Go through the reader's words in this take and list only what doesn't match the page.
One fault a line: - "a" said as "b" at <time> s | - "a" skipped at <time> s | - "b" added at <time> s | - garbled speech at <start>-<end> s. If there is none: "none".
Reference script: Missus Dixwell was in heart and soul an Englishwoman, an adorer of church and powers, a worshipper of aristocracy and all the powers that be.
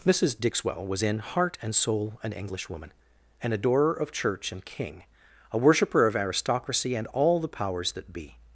- "powers" said as "king" at 4.7 s